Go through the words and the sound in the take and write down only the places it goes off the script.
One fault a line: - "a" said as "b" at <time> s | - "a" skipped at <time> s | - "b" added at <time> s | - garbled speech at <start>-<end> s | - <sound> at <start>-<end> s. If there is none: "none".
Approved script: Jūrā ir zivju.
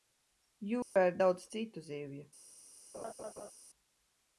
- dropout at 0.8-1.0 s
- "daudz citu" added at 1.2 s
- laugh at 2.9-3.5 s